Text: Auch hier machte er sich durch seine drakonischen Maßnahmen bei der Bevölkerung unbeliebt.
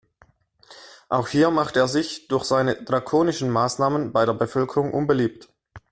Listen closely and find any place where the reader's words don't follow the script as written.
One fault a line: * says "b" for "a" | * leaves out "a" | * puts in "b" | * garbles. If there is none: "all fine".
all fine